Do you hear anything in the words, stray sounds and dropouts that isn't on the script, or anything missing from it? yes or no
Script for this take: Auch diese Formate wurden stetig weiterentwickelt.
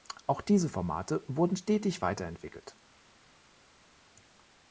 no